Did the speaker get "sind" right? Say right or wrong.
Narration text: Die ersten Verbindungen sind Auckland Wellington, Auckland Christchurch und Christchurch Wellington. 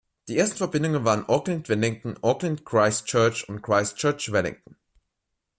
wrong